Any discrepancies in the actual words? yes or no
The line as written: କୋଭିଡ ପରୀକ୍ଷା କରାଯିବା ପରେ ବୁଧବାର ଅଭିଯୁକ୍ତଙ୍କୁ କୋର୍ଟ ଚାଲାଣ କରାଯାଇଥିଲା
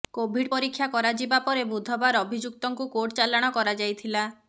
no